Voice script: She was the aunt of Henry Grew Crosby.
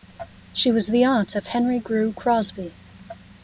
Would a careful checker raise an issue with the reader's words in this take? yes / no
no